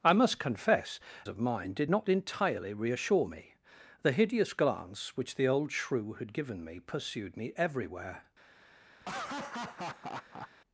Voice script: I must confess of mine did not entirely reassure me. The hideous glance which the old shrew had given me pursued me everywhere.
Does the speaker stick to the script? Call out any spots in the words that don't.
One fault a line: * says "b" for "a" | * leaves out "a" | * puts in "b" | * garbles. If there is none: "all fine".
all fine